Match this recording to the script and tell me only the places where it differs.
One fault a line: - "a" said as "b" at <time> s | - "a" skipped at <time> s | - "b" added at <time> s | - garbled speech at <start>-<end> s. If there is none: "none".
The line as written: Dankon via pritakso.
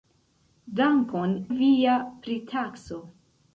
none